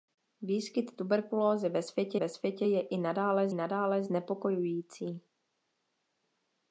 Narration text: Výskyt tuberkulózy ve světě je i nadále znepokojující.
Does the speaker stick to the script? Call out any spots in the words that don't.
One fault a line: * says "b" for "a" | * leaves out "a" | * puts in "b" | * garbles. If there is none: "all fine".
* puts in "ve světě"
* puts in "nadále"